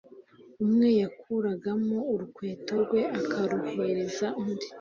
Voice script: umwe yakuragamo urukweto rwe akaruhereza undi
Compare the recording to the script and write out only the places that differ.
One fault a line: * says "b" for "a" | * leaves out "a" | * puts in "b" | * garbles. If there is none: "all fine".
all fine